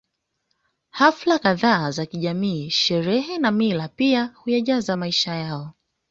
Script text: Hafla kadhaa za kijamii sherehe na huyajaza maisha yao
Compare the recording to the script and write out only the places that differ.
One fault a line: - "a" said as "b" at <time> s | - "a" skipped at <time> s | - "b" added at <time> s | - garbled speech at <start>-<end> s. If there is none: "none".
- "mila pia" added at 3.5 s